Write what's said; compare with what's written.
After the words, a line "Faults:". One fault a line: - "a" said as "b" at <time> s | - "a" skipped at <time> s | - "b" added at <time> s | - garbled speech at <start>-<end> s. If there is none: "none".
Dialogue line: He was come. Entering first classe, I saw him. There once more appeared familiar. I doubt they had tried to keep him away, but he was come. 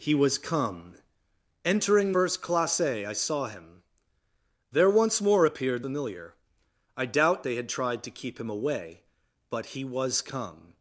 He was come. Entering first classe, I saw him. There once more appeared familiar. I doubt they had tried to keep him away, but he was come.
Faults:
none